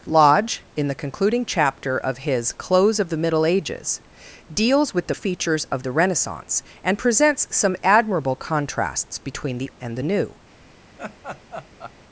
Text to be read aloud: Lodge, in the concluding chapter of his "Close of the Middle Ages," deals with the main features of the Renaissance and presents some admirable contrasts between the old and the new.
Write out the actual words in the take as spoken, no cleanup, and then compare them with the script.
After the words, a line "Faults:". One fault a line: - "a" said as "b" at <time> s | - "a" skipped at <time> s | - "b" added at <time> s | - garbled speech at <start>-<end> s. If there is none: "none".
Lodge, in the concluding chapter of his "Close of the Middle Ages," deals with the features of the Renaissance and presents some admirable contrasts between the and the new.
Faults:
- "main" skipped at 5.2 s
- "old" skipped at 9.7 s